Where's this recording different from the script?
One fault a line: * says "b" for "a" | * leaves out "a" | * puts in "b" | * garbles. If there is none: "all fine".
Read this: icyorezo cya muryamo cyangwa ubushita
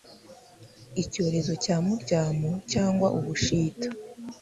all fine